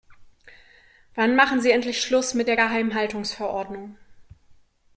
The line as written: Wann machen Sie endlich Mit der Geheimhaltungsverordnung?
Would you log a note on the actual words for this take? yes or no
yes